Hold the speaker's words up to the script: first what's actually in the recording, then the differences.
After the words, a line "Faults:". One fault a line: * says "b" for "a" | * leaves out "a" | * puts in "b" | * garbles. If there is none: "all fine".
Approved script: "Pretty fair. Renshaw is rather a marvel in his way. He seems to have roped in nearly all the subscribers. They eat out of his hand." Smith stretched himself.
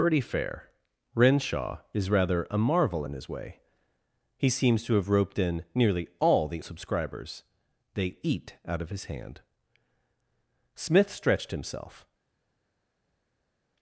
"Pretty fair. Renshaw is rather a marvel in his way. He seems to have roped in nearly all the subscribers. They eat out of his hand." Smith stretched himself.
Faults:
all fine